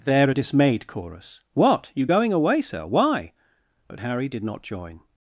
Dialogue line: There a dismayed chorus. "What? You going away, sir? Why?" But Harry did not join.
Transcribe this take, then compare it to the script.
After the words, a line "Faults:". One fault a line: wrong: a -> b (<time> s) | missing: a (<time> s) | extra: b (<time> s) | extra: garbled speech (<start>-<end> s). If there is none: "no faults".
There a dismayed chorus. "What? You going away, sir? Why?" But Harry did not join.
Faults:
no faults